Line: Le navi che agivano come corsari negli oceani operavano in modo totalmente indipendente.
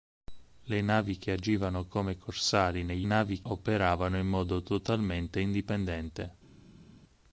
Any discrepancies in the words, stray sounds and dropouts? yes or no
yes